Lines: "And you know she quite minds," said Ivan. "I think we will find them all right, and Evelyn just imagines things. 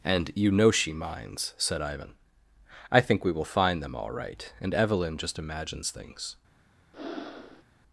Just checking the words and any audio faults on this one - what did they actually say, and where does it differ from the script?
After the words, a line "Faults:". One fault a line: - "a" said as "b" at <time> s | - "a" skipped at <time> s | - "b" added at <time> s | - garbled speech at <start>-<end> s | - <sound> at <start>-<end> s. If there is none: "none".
"And you know she minds," said Ivan. "I think we will find them all right, and Evelyn just imagines things.
Faults:
- "quite" skipped at 0.9 s
- breath at 6.9-7.6 s